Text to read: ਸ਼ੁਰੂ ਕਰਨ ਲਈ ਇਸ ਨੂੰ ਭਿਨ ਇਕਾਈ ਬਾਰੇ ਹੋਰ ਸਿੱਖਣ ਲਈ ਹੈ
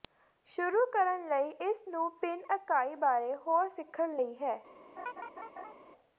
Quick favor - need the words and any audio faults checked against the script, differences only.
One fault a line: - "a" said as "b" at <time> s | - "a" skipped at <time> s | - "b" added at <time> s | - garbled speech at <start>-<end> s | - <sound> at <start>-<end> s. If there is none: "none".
- laugh at 5.0-5.7 s